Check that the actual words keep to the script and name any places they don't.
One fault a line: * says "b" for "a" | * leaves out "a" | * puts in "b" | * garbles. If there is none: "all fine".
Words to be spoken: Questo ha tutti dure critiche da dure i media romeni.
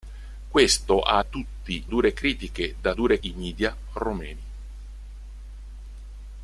all fine